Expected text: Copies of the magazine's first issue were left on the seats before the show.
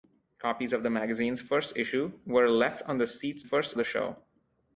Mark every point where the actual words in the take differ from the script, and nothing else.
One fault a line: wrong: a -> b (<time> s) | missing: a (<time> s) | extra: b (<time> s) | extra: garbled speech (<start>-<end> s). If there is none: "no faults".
wrong: before -> first (3.4 s)